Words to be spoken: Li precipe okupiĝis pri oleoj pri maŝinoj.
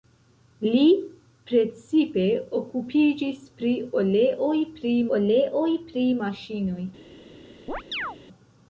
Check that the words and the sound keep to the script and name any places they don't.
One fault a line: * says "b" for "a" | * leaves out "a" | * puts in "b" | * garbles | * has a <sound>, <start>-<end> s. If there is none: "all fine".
* puts in "oleoj pri"
* has a chirp, 7.7-8.2 s